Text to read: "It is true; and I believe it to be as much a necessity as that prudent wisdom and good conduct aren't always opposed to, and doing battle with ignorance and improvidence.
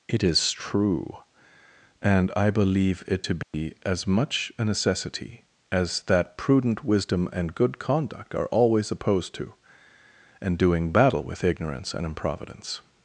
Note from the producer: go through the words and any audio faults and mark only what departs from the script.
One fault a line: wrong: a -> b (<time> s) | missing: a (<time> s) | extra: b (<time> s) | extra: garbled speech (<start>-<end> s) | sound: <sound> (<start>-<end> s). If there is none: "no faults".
sound: dropout (3.4-3.5 s)
wrong: aren't -> are (8.4 s)